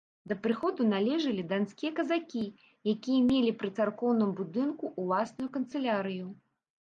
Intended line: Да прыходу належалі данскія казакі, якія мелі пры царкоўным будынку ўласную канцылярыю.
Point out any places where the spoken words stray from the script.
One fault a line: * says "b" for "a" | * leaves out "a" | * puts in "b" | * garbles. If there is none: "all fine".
all fine